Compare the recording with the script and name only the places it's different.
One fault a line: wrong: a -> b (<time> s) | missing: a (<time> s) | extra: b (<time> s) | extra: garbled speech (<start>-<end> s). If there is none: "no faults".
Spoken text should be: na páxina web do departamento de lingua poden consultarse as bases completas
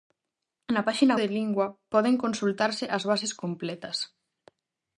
missing: web do departamento (1.1 s)